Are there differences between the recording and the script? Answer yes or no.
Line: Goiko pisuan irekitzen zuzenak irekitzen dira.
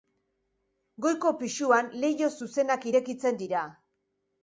yes